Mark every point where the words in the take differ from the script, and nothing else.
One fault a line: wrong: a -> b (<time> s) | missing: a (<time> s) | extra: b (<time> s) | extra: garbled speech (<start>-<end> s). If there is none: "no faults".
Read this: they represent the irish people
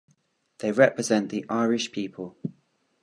no faults